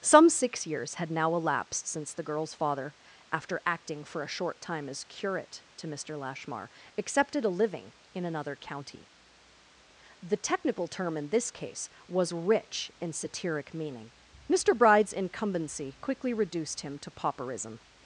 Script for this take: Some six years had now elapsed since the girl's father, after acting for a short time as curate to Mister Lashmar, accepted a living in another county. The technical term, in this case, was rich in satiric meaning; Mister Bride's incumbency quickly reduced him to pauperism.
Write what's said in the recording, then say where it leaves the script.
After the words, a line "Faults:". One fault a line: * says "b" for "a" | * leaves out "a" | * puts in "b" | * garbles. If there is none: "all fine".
Some six years had now elapsed since the girl's father, after acting for a short time as curate to Mister Lashmar, accepted a living in another county. The technical term, in this case, was rich in satiric meaning; Mister Bride's incumbency quickly reduced him to pauperism.
Faults:
all fine